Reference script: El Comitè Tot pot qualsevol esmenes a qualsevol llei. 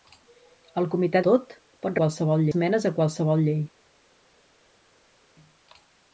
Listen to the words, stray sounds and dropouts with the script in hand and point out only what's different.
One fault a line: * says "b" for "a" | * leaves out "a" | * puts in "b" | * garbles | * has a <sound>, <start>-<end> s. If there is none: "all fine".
all fine